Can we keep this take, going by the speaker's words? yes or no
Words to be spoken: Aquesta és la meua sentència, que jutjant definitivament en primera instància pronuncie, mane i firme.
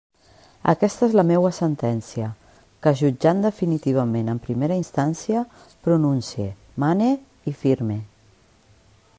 yes